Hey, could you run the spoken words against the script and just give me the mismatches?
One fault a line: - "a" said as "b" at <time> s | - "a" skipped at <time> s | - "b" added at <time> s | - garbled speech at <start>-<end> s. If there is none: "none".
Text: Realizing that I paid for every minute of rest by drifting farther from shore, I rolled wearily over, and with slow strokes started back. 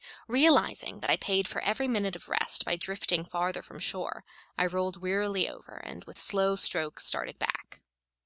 none